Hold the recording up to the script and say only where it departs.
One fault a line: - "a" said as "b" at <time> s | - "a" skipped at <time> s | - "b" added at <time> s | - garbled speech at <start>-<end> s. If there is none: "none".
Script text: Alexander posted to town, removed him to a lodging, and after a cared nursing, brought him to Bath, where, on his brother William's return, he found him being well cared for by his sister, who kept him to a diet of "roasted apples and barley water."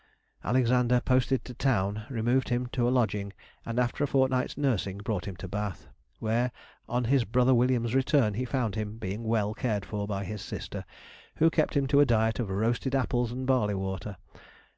- "cared" said as "fortnight's" at 4.1 s